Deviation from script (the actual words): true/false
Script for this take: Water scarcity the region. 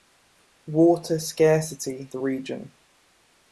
false